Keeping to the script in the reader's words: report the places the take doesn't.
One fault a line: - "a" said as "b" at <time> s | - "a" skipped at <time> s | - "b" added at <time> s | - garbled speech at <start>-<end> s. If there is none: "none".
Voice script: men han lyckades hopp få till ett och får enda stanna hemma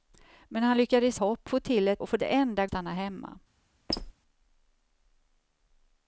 none